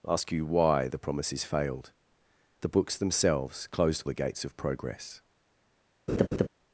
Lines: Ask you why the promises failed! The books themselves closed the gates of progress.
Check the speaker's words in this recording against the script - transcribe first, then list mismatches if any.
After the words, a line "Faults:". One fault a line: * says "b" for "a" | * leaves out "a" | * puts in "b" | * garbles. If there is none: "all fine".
Ask you why the promises failed! The books themselves closed the gates of progress.
Faults:
all fine